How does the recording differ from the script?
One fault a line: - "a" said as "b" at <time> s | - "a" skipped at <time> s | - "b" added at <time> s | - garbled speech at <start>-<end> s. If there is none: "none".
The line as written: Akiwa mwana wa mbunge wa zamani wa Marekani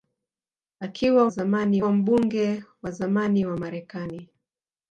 - "mwana" said as "zamani" at 1.3 s